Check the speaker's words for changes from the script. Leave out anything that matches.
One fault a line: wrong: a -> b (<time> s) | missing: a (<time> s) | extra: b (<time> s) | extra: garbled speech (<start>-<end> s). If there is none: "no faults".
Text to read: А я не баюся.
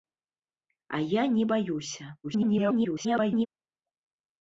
extra: garbled speech (2.2-3.5 s)